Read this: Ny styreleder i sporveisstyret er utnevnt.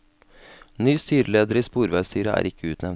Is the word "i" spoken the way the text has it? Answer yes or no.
yes